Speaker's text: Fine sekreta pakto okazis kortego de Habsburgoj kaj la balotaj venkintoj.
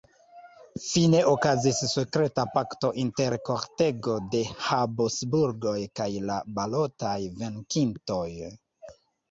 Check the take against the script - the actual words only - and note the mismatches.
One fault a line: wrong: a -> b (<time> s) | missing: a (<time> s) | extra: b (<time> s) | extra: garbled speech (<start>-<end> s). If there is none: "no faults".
extra: okazis (1.3 s)
wrong: okazis -> inter (3.0 s)